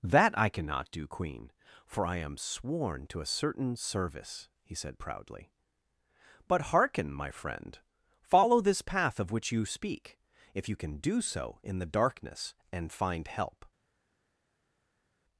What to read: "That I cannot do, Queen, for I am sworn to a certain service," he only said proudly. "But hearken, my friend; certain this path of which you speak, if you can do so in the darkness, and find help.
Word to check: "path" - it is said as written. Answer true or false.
true